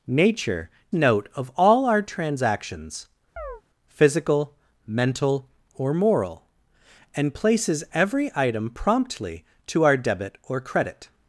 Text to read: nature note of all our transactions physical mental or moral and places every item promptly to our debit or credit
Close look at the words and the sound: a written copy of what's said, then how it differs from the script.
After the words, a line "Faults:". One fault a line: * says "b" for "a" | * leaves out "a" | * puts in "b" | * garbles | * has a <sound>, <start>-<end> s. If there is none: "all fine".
nature note of all our transactions physical mental or moral and places every item promptly to our debit or credit
Faults:
* has a chirp, 3.4-3.6 s